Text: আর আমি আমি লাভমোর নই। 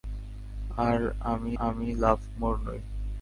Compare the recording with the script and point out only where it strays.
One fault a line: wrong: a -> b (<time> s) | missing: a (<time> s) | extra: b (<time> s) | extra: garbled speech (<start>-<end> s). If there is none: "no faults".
no faults